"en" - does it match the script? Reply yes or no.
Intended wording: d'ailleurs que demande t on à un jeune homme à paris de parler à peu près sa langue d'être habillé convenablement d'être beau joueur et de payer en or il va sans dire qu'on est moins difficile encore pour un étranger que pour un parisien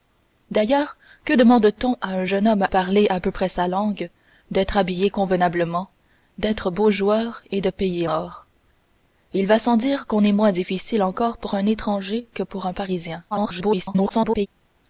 no